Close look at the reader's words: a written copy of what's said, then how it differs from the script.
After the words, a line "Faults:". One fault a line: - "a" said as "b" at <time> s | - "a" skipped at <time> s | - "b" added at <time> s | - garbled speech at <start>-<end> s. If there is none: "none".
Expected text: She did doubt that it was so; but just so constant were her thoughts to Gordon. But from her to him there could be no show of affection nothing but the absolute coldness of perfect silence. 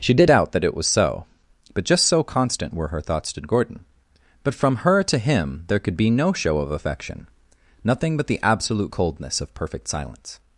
She did doubt that it was so; but just so constant were her thoughts to Gordon. But from her to him there could be no show of affection nothing but the absolute coldness of perfect silence.
Faults:
none